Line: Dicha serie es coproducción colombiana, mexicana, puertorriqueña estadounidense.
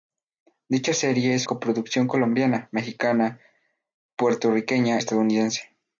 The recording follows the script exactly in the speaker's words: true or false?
true